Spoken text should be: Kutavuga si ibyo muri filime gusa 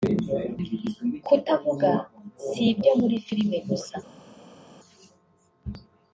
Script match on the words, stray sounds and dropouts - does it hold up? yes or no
yes